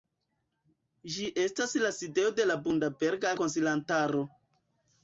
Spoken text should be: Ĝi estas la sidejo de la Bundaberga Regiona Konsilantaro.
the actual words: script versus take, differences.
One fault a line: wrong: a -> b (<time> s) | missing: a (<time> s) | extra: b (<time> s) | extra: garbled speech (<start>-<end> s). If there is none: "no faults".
missing: Regiona (3.4 s)